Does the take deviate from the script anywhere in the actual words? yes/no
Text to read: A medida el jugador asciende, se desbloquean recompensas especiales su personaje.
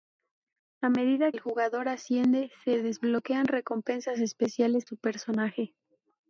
no